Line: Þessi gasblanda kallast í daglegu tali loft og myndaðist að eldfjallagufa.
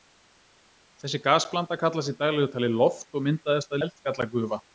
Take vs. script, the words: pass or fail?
pass